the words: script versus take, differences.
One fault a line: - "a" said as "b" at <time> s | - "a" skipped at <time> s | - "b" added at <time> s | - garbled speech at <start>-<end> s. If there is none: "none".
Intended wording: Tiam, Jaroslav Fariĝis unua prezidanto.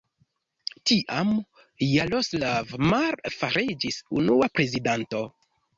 - "Mar" added at 2.9 s